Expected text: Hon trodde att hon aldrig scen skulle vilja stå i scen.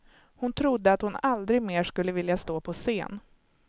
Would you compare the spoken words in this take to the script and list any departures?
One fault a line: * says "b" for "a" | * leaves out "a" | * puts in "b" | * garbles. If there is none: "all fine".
* says "mer" for "scen"
* says "på" for "i"